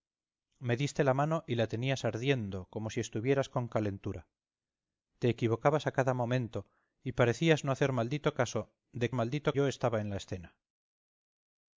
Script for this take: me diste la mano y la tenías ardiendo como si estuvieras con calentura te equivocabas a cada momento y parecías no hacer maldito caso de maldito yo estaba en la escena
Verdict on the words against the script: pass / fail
pass